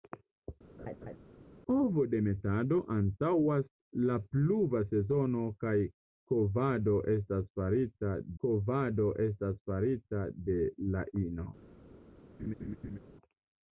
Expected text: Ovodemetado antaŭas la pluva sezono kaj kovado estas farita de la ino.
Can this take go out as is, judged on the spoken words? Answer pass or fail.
fail